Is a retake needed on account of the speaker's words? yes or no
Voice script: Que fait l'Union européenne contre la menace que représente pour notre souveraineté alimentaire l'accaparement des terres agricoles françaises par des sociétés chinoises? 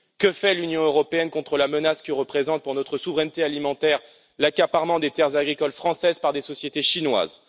no